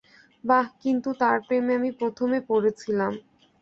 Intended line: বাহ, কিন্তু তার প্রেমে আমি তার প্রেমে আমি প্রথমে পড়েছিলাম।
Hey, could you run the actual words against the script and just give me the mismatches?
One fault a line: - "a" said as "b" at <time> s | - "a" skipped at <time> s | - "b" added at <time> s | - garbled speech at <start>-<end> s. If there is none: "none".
- "তার প্রেমে আমি" skipped at 1.9 s